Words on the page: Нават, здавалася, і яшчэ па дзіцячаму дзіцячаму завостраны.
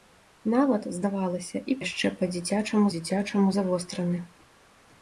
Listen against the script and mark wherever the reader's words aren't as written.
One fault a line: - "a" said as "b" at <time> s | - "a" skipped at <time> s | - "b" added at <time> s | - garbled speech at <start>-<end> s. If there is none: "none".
none